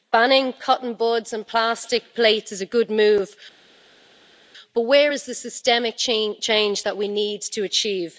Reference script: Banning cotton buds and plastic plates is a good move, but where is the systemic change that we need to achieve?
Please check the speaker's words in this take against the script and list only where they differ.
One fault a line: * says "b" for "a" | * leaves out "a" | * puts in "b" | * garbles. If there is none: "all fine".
all fine